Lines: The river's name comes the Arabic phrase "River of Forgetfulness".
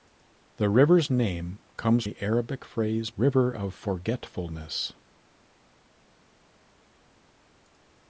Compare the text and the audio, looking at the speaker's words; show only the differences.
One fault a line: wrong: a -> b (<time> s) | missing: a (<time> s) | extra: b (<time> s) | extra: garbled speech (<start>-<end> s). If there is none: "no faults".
no faults